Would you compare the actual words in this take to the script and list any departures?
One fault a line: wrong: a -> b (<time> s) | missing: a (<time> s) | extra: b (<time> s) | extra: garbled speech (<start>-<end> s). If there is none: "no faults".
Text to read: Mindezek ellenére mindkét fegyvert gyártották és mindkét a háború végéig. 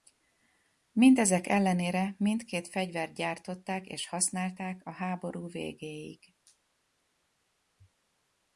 wrong: mindkét -> használták (4.1 s)